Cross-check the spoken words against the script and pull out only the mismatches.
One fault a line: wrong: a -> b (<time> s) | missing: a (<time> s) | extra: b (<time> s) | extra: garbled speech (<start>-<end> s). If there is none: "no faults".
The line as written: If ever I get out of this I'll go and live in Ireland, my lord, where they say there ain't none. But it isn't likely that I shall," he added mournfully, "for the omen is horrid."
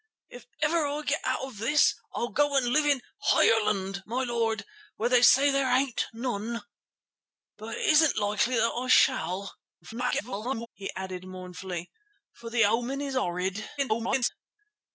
extra: garbled speech (9.8-10.7 s)
extra: garbled speech (13.8-14.3 s)